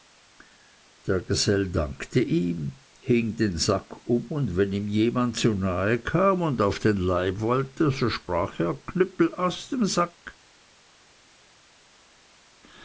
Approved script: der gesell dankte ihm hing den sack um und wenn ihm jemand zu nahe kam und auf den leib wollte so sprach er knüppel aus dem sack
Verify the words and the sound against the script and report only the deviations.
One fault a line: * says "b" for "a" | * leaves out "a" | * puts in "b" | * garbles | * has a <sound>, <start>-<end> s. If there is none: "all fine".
all fine